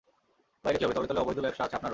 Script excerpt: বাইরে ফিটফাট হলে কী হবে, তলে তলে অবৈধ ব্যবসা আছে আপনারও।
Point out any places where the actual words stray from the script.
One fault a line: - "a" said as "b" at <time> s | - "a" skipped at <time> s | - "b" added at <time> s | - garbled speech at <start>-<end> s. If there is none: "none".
- "ফিটফাট হলে" skipped at 0.8 s